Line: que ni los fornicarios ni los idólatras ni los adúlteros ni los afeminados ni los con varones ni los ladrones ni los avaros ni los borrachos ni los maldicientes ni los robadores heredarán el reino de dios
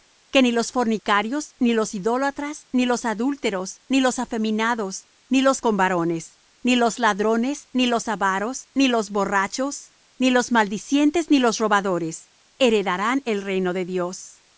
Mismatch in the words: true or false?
false